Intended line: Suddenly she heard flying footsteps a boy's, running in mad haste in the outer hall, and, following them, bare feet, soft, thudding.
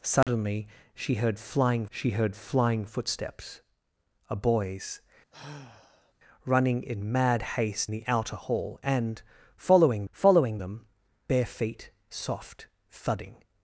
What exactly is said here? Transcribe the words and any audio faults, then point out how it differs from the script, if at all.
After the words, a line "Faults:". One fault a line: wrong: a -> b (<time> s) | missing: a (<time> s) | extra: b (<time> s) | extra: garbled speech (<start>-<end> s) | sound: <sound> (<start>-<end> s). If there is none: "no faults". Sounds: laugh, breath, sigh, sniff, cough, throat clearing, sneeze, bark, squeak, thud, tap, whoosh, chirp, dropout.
Suddenly she heard flying she heard flying footsteps a boy's, running in mad haste the outer hall, and, following following them, bare feet, soft, thudding.
Faults:
sound: dropout (0.2-0.3 s)
extra: she heard flying (1.9 s)
sound: sigh (5.3-6.1 s)
missing: in (7.9 s)
extra: following (10.1 s)